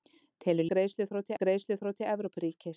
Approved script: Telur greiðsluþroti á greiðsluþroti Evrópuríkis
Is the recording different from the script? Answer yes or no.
no